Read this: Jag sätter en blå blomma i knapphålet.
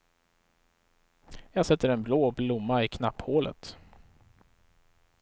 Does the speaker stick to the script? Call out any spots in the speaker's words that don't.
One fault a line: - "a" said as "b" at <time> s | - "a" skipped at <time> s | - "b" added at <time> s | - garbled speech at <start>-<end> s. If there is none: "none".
none